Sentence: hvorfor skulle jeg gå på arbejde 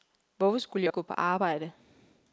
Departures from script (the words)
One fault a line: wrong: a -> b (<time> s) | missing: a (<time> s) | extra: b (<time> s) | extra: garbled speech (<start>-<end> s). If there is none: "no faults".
no faults